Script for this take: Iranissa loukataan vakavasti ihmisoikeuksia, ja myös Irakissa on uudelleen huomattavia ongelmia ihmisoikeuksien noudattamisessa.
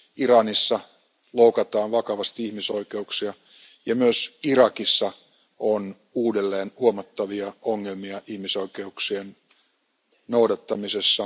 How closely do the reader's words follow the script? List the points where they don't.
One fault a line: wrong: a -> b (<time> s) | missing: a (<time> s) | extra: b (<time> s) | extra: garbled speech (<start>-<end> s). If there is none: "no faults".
no faults